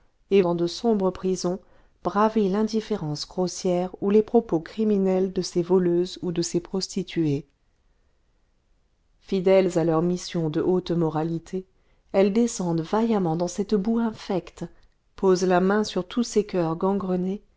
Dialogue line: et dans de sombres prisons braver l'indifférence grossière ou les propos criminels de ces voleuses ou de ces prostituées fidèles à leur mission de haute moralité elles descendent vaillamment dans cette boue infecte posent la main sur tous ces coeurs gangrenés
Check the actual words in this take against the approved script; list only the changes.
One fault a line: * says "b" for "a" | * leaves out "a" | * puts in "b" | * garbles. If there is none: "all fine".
all fine